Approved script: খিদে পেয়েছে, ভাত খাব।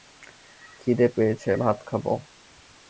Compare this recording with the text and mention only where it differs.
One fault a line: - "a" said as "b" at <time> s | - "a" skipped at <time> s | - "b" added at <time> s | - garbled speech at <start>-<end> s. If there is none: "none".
none